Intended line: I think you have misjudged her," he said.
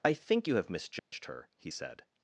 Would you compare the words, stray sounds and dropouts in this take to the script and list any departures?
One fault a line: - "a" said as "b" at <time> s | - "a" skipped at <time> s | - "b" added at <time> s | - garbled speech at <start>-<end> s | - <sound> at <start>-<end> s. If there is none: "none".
- dropout at 1.0-1.1 s